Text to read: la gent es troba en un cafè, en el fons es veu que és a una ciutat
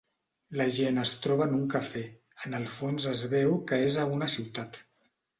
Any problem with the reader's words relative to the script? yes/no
no